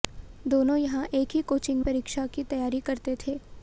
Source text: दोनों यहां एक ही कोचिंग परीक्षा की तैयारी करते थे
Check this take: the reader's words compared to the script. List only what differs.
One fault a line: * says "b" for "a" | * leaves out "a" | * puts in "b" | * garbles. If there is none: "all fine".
all fine